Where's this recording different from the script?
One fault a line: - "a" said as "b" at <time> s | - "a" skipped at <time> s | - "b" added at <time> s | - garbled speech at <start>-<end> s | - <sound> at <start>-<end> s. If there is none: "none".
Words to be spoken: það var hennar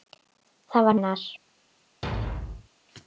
- thud at 2.0-2.7 s